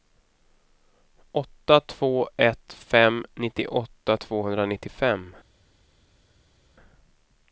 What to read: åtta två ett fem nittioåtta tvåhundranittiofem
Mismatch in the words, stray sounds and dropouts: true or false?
false